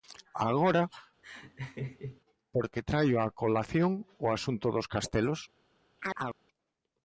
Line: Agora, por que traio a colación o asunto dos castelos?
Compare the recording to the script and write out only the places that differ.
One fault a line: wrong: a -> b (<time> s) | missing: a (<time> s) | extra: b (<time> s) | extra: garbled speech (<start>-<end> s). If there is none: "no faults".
no faults